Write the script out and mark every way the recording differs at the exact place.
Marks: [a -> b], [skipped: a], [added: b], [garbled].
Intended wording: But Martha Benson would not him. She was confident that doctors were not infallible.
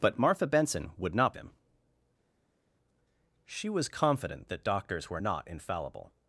But Martha Benson would not him. She was confident that doctors were not infallible.